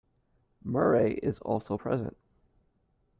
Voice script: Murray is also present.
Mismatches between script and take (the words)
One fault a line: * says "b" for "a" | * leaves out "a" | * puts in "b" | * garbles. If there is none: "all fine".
all fine